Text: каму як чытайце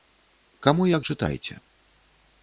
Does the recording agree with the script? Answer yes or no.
yes